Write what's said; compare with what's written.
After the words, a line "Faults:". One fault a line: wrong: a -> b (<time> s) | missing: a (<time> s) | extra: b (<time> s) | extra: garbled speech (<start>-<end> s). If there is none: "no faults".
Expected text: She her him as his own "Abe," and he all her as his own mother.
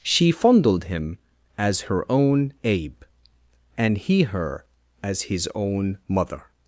She fondled him as her own "Abe," and he her as his own mother.
Faults:
wrong: her -> fondled (0.3 s)
wrong: his -> her (1.8 s)
missing: all (4.2 s)